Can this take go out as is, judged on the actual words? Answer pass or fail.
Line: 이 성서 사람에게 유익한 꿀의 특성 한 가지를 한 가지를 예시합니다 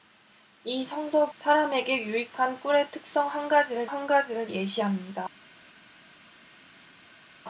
pass